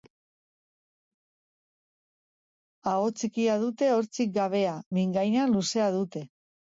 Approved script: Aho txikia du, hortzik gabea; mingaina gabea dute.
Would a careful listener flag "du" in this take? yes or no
yes